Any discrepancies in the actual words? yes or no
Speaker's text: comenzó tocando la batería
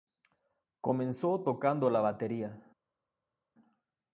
no